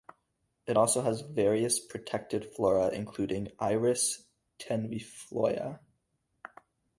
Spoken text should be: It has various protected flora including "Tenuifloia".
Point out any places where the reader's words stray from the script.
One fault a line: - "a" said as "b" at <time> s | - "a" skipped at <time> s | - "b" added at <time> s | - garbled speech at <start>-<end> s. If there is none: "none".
- "also" added at 0.8 s
- "Iris" added at 3.6 s